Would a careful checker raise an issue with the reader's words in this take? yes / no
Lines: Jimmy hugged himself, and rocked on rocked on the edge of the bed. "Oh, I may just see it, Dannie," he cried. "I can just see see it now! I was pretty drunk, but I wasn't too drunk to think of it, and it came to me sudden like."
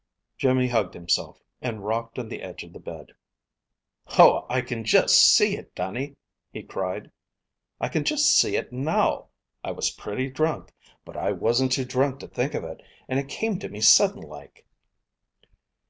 yes